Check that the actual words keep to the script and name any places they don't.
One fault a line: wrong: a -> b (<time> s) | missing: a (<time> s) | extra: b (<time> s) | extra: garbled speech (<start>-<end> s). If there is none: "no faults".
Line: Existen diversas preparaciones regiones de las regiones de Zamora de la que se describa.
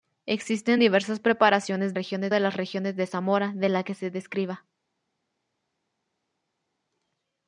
no faults